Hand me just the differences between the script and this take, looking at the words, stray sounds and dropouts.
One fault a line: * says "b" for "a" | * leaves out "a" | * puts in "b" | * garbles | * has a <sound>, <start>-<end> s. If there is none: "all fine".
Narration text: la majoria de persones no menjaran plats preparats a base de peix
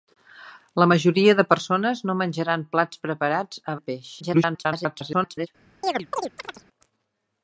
* leaves out "base"
* garbles
* has a chirp, 5.8-6.7 s